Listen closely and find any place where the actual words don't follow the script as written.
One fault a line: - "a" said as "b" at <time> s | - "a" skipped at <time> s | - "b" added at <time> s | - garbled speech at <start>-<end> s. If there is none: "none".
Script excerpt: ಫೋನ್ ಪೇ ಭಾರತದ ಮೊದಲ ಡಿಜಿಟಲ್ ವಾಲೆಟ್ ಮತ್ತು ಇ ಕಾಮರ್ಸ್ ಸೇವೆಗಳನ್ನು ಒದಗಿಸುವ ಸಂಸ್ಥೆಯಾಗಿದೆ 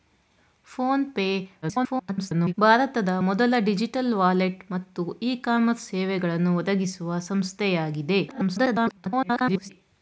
- garbled speech at 1.6-2.5 s
- garbled speech at 8.3-9.7 s